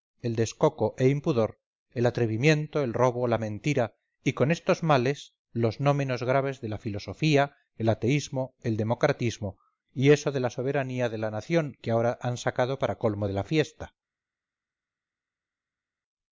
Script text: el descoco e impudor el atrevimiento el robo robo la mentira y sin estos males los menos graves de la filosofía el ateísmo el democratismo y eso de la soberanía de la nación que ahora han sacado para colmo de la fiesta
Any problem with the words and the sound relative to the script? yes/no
yes